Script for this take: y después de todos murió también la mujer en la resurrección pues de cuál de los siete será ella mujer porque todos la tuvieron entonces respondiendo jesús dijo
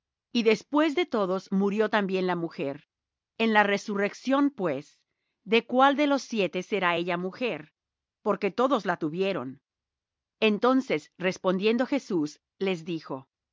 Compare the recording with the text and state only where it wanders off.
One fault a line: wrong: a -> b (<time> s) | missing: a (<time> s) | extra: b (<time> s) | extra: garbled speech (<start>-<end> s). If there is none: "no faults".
extra: les (12.6 s)